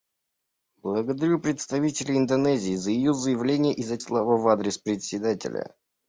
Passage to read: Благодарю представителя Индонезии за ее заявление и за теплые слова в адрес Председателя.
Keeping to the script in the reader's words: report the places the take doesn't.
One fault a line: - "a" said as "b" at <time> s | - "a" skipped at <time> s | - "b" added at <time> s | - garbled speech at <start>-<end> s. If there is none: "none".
- "теплые" skipped at 4.0 s